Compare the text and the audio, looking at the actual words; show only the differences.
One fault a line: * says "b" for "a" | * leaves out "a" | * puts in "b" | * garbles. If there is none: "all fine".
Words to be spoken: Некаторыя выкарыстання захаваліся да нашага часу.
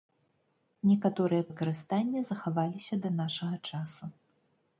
all fine